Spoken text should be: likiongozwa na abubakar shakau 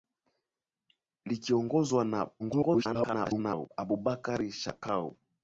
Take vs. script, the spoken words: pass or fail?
fail